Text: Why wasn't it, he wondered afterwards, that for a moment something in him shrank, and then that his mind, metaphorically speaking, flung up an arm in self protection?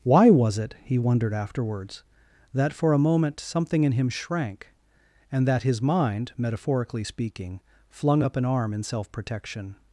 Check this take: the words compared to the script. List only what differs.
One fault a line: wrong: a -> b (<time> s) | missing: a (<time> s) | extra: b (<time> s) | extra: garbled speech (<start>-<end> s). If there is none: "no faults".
wrong: wasn't -> was (0.3 s)
missing: then (5.5 s)